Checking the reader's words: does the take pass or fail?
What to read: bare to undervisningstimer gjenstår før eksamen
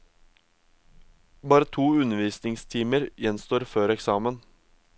pass